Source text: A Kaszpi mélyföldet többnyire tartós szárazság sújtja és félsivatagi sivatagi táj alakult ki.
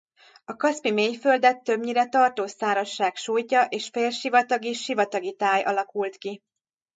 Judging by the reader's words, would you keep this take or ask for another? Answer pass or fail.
pass